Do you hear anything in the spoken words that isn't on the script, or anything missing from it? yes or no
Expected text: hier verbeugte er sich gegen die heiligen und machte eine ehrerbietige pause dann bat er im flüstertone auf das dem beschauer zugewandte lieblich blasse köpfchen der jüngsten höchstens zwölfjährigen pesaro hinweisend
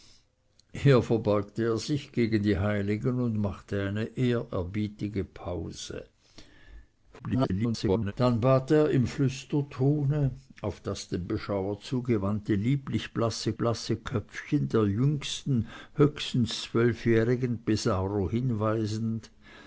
yes